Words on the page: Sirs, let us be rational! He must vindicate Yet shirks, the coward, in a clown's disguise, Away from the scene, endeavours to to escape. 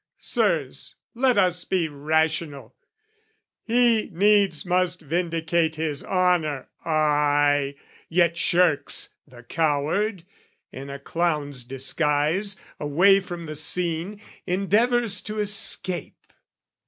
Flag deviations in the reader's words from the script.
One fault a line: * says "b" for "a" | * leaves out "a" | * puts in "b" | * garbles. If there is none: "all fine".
* puts in "needs"
* puts in "his honour ay"
* leaves out "to"